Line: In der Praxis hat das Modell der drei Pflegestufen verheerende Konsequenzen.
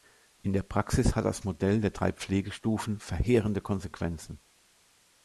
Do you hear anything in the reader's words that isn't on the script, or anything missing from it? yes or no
no